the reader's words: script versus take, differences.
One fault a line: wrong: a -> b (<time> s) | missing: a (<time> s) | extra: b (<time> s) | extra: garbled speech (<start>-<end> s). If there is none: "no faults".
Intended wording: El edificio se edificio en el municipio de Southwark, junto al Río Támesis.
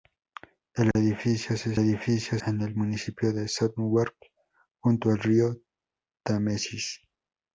no faults